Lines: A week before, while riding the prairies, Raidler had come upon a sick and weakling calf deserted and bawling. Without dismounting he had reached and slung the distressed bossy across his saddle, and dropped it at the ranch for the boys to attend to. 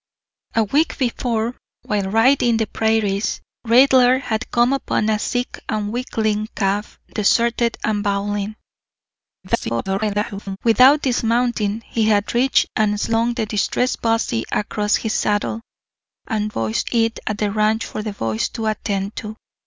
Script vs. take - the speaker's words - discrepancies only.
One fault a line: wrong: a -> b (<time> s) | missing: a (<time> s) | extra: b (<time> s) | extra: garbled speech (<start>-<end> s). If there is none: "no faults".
extra: garbled speech (9.4-10.6 s)
wrong: dropped -> boys (16.5 s)